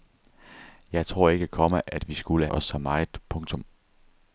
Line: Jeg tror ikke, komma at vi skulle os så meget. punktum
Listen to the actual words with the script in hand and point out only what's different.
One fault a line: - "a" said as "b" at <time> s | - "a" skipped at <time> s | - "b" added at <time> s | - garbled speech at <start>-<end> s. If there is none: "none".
none